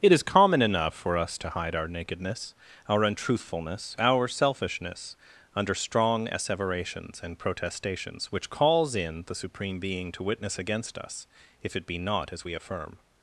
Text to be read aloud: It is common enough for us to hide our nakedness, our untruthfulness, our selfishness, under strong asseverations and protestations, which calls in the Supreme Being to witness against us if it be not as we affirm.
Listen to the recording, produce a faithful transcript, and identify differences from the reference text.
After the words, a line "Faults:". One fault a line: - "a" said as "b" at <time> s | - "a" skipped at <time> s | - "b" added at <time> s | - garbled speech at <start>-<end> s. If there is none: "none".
It is common enough for us to hide our nakedness, our untruthfulness, our selfishness, under strong asseverations and protestations, which calls in the Supreme Being to witness against us if it be not as we affirm.
Faults:
none